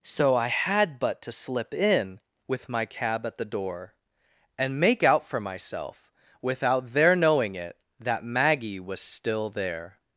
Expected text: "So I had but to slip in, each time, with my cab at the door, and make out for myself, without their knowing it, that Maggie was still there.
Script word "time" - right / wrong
wrong